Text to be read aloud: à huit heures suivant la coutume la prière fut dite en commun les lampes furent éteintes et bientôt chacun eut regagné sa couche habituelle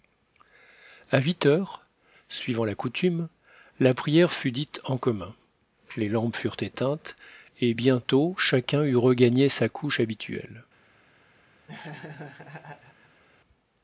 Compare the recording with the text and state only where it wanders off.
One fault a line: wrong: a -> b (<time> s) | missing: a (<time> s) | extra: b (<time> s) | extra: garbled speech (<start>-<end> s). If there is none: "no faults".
no faults